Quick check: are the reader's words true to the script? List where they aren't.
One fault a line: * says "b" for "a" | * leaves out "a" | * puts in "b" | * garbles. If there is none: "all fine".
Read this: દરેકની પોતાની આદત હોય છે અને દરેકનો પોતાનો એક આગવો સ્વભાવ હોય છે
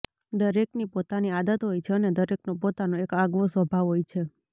all fine